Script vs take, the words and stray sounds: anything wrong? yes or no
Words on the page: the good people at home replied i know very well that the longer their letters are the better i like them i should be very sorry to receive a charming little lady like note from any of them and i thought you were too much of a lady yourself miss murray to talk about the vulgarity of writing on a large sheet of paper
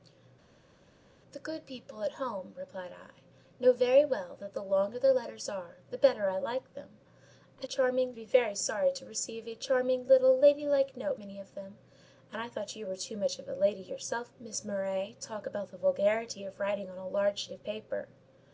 yes